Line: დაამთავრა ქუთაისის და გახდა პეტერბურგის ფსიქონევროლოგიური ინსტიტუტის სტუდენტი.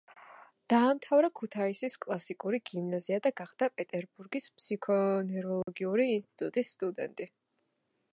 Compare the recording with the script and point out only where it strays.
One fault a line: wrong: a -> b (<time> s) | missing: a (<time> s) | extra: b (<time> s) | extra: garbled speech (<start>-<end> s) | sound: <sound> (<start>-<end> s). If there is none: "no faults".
extra: კლასიკური გიმნაზია (2.0 s)
sound: dropout (5.6-5.7 s)